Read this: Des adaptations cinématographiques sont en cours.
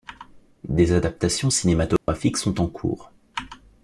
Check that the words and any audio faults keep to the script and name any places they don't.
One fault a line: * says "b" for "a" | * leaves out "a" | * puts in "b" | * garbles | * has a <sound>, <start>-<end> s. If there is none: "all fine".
* has a dropout, 2.0-2.1 s